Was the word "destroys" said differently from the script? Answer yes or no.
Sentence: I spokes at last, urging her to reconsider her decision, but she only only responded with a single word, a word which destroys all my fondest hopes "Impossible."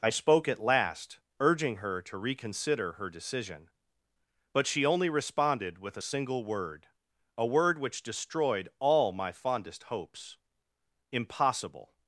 yes